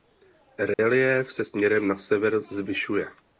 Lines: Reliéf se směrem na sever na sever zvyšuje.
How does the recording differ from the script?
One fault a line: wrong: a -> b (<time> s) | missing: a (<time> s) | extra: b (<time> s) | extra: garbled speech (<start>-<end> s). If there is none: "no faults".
missing: na sever (2.4 s)